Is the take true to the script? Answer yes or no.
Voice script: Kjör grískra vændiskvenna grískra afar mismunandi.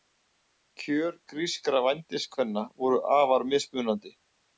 no